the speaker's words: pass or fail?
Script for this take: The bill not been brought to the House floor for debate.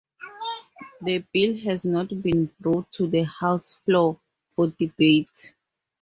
fail